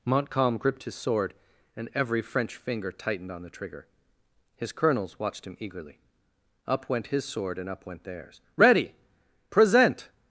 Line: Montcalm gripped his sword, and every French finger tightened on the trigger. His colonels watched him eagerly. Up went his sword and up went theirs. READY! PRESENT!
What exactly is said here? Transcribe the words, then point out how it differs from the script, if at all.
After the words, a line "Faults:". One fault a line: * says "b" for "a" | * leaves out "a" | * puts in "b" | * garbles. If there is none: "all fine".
Montcalm gripped his sword, and every French finger tightened on the trigger. His colonels watched him eagerly. Up went his sword and up went theirs. READY! PRESENT!
Faults:
all fine